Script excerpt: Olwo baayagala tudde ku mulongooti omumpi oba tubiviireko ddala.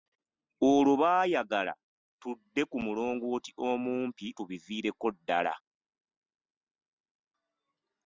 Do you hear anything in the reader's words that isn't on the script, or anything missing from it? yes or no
yes